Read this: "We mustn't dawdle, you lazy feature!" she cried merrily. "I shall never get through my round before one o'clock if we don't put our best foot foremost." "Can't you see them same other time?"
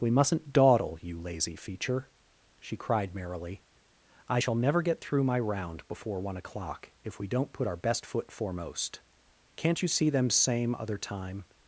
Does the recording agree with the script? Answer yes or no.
yes